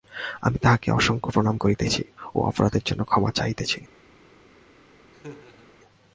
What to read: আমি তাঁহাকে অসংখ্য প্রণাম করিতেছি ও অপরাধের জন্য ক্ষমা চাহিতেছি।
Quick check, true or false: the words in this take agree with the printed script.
true